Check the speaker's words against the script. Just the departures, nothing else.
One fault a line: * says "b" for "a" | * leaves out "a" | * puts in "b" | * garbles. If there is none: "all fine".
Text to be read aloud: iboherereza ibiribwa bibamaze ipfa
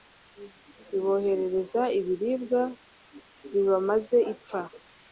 all fine